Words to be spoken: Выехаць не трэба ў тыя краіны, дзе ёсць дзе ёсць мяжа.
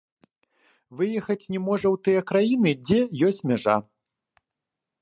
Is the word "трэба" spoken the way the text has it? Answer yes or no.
no